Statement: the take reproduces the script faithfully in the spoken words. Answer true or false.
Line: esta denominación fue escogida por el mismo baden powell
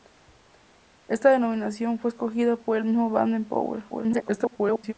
false